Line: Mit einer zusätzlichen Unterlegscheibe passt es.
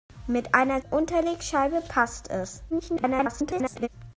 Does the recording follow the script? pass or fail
fail